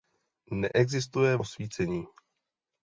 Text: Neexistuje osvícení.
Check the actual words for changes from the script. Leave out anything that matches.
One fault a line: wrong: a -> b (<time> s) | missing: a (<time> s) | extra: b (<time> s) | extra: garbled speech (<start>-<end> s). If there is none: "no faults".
no faults